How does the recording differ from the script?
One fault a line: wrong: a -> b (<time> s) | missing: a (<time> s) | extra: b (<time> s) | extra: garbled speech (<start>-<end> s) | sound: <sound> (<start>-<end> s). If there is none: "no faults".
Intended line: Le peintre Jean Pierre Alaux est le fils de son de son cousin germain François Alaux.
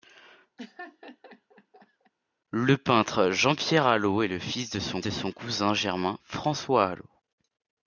sound: laugh (0.6-2.1 s)